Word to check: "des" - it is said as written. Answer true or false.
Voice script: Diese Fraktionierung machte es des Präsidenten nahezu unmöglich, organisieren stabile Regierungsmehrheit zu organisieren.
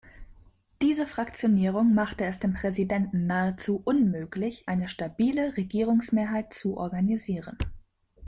false